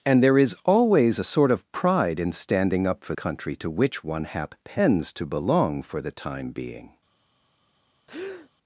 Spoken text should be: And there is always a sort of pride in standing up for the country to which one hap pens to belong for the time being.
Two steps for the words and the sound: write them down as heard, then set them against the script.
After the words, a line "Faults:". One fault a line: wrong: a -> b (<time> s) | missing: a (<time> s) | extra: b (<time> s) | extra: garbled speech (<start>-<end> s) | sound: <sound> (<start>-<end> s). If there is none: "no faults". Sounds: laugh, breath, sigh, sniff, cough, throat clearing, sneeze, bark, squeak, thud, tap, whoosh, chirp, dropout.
And there is always a sort of pride in standing up for country to which one hap pens to belong for the time being.
Faults:
missing: the (3.1 s)
sound: breath (8.1-8.5 s)